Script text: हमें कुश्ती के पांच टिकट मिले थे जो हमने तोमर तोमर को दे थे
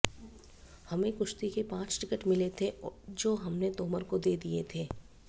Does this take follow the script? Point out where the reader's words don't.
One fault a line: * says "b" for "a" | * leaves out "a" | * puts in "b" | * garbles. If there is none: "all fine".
* leaves out "तोमर"
* puts in "दिए"